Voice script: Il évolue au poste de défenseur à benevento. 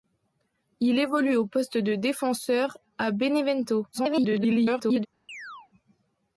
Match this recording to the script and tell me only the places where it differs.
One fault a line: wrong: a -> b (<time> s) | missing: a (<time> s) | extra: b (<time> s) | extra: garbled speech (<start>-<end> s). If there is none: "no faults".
extra: garbled speech (3.9-5.1 s)